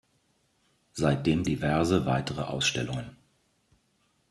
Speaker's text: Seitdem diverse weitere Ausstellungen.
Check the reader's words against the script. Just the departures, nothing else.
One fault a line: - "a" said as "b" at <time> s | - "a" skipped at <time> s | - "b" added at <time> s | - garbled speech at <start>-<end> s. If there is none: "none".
none